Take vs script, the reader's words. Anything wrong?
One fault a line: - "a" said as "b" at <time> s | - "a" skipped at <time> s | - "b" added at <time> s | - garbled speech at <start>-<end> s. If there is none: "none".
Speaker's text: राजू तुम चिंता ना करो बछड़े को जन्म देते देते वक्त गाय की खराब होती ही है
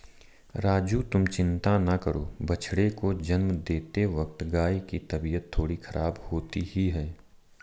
- "देते" skipped at 4.0 s
- "तबीयत थोड़ी" added at 5.1 s